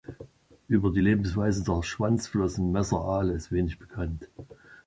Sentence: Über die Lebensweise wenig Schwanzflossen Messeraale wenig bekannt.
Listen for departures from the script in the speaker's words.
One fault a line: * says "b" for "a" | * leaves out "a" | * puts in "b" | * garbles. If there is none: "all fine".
* says "der" for "wenig"
* puts in "ist"